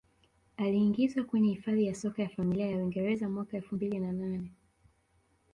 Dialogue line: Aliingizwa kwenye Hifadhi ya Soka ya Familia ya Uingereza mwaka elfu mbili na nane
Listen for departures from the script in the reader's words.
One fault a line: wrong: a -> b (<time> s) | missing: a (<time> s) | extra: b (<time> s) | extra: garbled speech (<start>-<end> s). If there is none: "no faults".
no faults